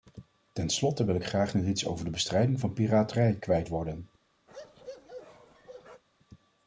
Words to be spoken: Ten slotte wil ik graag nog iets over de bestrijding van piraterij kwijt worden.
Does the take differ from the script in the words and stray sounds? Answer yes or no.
yes